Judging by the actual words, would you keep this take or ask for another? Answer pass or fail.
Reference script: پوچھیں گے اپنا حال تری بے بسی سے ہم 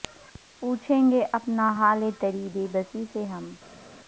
pass